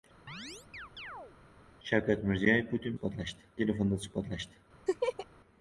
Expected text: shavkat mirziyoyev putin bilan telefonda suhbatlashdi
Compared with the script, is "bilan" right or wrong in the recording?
wrong